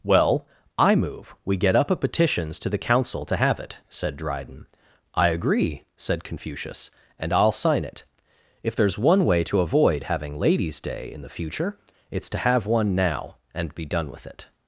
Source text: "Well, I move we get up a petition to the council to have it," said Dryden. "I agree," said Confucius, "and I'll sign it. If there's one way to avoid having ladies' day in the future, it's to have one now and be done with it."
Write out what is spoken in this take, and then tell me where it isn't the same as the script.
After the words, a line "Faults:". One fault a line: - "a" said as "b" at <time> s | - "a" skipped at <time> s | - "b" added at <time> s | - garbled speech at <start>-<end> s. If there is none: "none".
"Well, I move we get up a petitions to the council to have it," said Dryden. "I agree," said Confucius, "and I'll sign it. If there's one way to avoid having ladies' day in the future, it's to have one now and be done with it."
Faults:
- "petition" said as "petitions" at 1.9 s